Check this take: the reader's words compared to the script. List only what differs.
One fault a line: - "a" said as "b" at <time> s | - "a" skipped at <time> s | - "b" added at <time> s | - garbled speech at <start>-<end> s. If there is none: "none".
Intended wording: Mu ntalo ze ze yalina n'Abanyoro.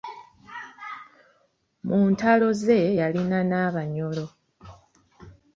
- "ze" skipped at 2.8 s